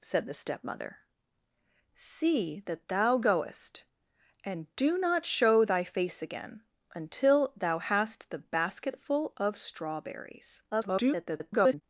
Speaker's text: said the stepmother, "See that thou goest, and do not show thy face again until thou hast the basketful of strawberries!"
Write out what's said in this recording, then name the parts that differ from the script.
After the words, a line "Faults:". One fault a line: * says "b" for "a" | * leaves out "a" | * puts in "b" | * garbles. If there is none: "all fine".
said the stepmother, "See that thou goest, and do not show thy face again until thou hast the basketful of strawberries!" [garbled]
Faults:
* garbles